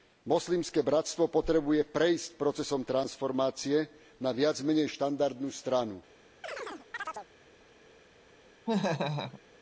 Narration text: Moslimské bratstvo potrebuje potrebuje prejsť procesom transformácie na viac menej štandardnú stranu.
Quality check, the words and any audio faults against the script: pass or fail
fail